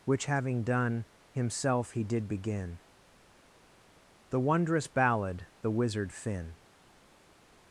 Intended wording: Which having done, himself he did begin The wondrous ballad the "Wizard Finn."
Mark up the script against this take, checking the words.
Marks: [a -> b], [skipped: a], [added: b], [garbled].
Which having done, himself he did begin The wondrous ballad the "Wizard Finn."